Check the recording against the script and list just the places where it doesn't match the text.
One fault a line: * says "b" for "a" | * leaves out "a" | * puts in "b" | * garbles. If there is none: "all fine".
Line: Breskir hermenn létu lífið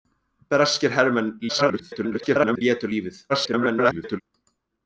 * garbles
* garbles